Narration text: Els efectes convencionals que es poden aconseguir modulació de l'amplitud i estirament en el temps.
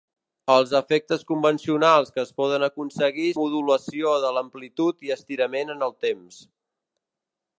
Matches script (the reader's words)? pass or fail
pass